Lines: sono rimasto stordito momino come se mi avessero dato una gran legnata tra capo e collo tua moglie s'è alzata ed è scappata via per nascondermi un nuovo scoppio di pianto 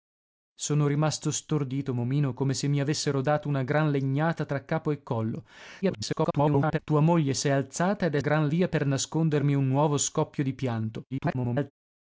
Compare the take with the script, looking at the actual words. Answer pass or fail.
fail